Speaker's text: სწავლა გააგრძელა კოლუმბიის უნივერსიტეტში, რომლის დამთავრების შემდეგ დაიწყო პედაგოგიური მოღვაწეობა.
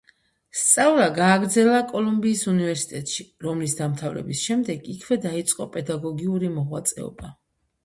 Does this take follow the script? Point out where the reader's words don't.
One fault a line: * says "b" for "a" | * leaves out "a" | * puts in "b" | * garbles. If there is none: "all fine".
* puts in "იქვე"